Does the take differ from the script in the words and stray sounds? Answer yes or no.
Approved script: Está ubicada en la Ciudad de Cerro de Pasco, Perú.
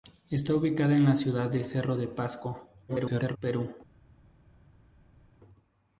yes